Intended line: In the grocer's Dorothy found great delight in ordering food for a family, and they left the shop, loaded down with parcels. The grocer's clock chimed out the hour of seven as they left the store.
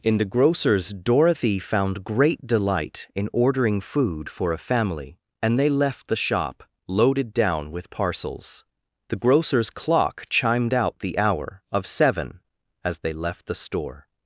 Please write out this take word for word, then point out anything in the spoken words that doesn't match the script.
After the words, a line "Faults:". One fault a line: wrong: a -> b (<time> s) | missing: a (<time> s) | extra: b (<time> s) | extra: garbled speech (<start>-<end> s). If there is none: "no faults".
In the grocer's Dorothy found great delight in ordering food for a family, and they left the shop, loaded down with parcels. The grocer's clock chimed out the hour of seven as they left the store.
Faults:
no faults